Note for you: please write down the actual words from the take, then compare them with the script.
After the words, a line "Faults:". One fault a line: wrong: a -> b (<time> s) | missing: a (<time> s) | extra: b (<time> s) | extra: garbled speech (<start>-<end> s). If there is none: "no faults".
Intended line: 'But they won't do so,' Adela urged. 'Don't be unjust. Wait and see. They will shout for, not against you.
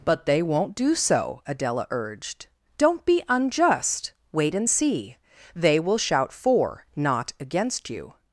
'But they won't do so,' Adela urged. 'Don't be unjust. Wait and see. They will shout for, not against you.
Faults:
no faults